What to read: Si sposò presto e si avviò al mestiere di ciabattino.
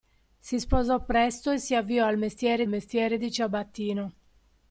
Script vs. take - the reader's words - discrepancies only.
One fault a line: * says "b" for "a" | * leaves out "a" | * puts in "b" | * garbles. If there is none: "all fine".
* puts in "mestiere"